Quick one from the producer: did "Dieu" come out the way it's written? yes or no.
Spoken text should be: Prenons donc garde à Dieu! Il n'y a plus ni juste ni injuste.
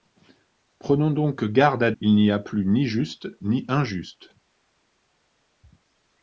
no